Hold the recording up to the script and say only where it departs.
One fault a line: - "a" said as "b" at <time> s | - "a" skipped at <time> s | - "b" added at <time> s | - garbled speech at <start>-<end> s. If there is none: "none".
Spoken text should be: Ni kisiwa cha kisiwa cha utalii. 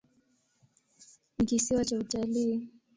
- "kisiwa cha" skipped at 2.0 s